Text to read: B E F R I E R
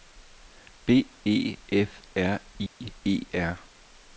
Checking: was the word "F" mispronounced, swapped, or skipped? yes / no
no